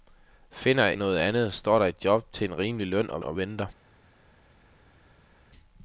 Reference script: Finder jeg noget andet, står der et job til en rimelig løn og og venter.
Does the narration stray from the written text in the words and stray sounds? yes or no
no